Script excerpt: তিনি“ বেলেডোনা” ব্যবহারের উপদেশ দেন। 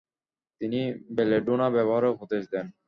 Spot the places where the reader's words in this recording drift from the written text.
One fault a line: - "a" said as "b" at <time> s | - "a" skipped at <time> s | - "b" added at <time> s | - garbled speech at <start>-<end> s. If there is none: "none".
none